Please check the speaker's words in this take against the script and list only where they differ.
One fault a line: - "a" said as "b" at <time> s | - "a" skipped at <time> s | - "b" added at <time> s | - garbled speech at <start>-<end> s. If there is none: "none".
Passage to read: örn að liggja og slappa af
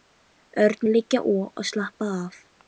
none